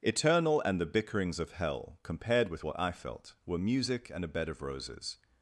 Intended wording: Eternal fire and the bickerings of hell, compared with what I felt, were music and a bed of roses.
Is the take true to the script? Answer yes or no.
no